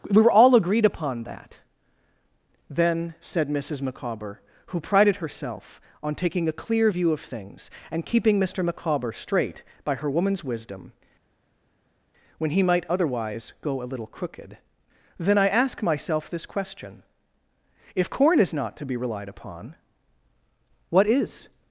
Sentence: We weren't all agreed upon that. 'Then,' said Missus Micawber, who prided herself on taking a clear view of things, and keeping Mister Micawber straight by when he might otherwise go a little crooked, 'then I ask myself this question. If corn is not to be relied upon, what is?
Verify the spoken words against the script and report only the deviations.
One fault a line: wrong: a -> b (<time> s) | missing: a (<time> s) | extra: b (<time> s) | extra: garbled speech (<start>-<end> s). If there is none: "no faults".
wrong: weren't -> were (0.2 s)
extra: her woman's wisdom (10.0 s)